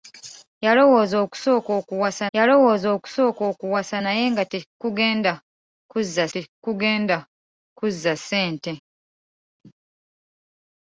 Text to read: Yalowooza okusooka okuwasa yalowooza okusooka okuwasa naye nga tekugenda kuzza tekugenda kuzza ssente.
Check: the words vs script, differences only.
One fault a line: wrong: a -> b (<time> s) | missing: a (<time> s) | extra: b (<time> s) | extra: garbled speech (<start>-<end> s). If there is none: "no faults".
no faults